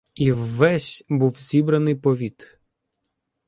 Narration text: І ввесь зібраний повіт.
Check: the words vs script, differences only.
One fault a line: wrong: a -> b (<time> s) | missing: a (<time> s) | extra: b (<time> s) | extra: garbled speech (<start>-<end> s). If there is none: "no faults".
extra: був (1.1 s)